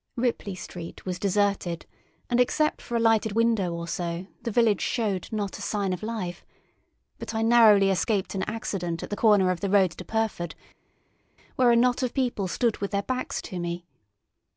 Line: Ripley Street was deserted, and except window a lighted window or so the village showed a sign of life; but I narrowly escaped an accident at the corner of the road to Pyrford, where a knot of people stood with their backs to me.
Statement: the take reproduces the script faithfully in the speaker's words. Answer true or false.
false